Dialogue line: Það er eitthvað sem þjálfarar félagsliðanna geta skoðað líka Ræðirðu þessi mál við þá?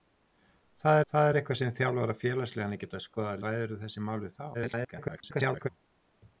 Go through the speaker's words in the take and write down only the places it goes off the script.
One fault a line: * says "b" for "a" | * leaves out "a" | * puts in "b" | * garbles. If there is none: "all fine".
* puts in "það"
* leaves out "líka"
* garbles